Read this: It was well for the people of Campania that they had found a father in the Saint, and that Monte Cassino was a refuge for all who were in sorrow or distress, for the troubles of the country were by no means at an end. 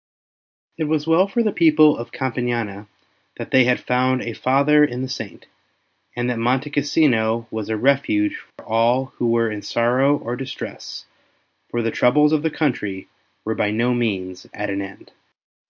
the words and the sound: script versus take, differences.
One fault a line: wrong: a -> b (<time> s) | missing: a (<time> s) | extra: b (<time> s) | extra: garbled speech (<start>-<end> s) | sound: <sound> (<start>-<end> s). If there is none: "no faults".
sound: dropout (8.5-8.6 s)